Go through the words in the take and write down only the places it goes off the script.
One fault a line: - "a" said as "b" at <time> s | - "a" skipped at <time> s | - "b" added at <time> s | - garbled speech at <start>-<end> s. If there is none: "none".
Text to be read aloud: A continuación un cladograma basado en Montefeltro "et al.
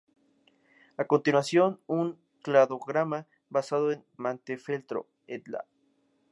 none